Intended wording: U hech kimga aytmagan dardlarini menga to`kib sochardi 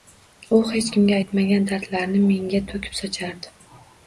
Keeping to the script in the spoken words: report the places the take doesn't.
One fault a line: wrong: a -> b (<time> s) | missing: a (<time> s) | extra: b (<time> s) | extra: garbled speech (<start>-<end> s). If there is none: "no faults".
no faults